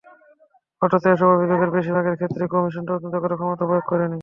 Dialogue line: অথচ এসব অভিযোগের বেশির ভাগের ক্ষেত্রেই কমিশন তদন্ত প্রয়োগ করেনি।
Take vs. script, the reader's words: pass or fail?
fail